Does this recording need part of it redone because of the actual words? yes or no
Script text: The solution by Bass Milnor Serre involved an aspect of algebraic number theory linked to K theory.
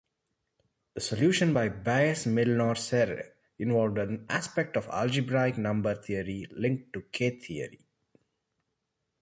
no